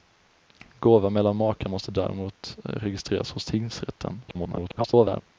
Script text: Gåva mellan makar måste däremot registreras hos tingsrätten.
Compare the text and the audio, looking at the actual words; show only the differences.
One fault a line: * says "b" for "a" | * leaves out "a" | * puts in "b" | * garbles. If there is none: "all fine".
* garbles